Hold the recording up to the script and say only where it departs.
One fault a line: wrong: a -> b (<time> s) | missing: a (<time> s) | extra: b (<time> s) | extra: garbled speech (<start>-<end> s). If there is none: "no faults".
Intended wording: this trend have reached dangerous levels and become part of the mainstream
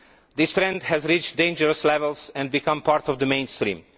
wrong: have -> has (0.8 s)